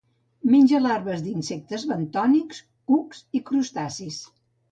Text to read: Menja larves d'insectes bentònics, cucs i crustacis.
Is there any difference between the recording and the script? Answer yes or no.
no